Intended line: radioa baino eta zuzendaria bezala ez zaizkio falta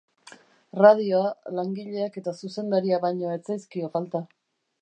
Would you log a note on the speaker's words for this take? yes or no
yes